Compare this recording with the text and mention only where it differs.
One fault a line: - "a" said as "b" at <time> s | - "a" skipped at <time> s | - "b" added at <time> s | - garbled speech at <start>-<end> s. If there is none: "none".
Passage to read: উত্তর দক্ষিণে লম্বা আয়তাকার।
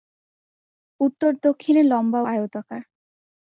none